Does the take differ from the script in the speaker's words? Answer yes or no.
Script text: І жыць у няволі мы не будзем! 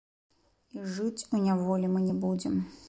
no